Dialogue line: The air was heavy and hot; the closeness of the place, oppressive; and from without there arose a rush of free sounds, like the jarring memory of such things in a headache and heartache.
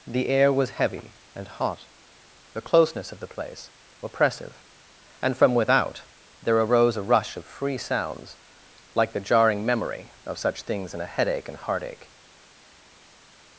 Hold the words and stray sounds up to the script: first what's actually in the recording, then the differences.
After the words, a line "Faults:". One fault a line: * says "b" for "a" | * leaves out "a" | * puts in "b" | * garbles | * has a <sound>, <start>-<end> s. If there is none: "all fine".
The air was heavy and hot; the closeness of the place, oppressive; and from without there arose a rush of free sounds, like the jarring memory of such things in a headache and heartache.
Faults:
all fine